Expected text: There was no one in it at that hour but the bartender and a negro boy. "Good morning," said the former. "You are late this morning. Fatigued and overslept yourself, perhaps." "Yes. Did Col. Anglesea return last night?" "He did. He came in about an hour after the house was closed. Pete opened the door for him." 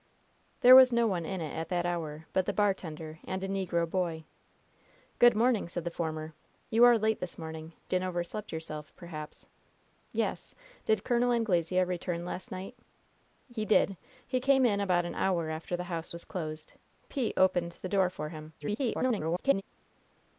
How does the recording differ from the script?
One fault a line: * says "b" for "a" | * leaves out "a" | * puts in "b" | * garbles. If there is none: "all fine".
* leaves out "Fatigued"
* garbles